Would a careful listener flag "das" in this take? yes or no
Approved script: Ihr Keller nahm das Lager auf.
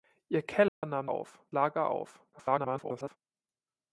yes